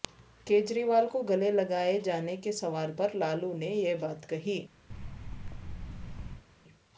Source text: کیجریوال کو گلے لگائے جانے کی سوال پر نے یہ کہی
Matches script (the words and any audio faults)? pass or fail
fail